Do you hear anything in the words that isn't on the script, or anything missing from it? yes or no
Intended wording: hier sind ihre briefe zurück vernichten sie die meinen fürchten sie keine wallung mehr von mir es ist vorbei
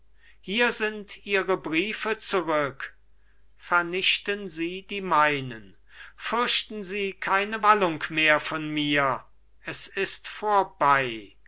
no